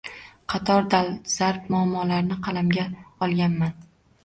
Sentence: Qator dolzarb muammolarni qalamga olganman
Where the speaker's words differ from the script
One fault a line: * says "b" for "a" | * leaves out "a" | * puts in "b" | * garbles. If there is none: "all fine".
all fine